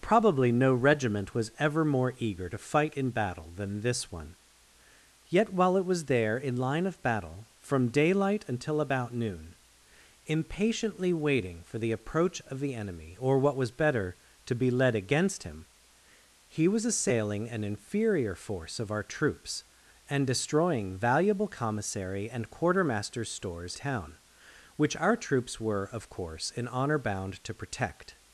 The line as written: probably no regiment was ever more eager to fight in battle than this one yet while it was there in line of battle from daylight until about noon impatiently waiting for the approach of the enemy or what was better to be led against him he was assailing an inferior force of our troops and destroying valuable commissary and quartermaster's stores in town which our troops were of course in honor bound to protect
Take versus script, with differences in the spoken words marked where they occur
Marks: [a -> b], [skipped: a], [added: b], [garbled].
probably no regiment was ever more eager to fight in battle than this one yet while it was there in line of battle from daylight until about noon impatiently waiting for the approach of the enemy or what was better to be led against him he was assailing an inferior force of our troops and destroying valuable commissary and quartermaster's stores [skipped: in] town which our troops were of course in honor bound to protect